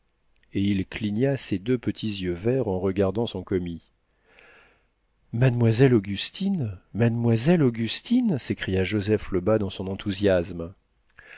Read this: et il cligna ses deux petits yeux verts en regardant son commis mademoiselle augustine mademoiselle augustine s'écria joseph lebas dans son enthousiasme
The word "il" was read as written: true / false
true